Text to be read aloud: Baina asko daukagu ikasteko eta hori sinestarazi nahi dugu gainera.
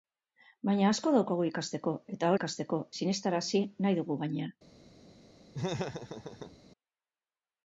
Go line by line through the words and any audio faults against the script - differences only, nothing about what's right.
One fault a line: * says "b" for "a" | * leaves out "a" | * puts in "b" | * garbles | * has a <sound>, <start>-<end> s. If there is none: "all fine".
* says "ikasteko" for "hori"
* has a laugh, 5.5-6.6 s